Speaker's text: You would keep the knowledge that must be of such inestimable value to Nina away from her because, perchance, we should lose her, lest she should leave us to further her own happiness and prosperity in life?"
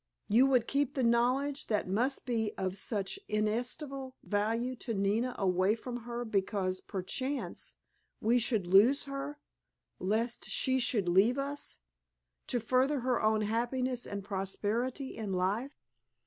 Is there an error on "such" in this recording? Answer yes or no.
no